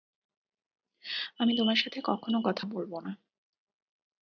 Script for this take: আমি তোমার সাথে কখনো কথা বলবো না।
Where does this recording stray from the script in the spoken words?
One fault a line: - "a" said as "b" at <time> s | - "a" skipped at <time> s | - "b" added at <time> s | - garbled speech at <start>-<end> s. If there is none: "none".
none